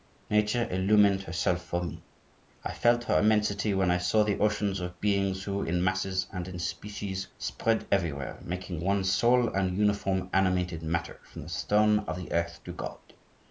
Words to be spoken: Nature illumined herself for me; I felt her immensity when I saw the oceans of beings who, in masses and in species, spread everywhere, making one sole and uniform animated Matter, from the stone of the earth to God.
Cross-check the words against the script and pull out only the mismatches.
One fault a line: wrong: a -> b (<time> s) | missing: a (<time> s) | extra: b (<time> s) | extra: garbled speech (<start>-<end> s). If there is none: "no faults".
no faults